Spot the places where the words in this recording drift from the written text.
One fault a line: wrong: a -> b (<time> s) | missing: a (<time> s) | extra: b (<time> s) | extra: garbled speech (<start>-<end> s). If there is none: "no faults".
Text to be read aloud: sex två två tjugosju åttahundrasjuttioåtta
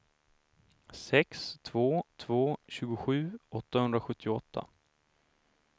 no faults